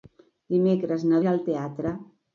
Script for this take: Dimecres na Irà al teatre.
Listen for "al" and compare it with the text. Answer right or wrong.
right